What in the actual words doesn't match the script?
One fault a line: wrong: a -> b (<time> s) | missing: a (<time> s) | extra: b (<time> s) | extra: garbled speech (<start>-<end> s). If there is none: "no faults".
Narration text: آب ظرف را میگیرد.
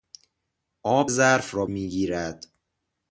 no faults